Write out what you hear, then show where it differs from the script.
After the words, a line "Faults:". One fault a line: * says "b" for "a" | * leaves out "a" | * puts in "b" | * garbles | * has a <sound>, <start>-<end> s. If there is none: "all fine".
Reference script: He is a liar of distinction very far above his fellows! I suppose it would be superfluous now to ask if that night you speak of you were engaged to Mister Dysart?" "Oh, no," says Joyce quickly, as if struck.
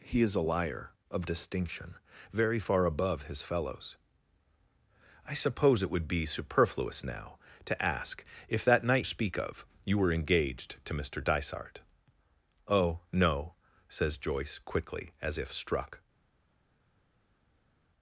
He is a liar of distinction very far above his fellows! I suppose it would be superfluous now to ask if that night speak of you were engaged to Mister Dysart?" "Oh, no," says Joyce quickly, as if struck.
Faults:
* leaves out "you"